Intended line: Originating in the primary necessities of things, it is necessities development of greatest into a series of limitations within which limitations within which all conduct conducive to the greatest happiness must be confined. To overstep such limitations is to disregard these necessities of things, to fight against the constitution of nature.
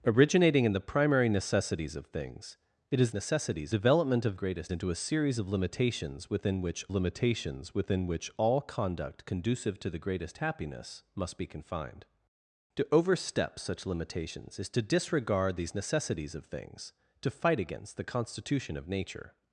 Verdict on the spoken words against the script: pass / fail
pass